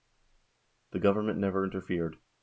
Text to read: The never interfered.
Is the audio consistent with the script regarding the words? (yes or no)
no